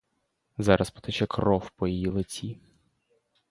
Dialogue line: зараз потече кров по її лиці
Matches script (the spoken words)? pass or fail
pass